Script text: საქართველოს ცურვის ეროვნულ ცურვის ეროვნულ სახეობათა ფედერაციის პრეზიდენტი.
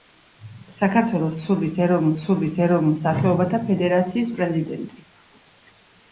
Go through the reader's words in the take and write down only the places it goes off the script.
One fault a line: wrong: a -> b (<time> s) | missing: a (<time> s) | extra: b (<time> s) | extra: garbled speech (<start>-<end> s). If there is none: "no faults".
no faults